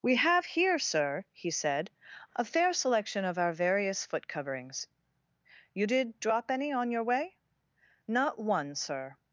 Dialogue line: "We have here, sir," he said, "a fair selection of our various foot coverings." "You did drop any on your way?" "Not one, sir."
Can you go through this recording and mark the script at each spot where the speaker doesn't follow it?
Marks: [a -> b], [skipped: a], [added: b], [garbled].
"We have here, sir," he said, "a fair selection of our various foot coverings." "You did drop any on your way?" "Not one, sir."